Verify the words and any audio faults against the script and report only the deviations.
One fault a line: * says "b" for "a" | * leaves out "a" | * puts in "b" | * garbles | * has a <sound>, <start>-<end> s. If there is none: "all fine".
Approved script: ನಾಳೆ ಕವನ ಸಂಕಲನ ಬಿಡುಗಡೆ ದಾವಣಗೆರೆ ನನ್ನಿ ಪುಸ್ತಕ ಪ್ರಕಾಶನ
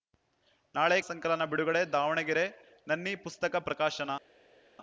* leaves out "ಕವನ"